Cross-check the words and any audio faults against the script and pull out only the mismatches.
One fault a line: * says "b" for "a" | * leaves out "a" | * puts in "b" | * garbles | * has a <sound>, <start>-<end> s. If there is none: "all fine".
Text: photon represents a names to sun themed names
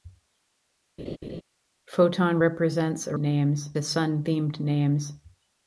* has a laugh, 1.0-1.4 s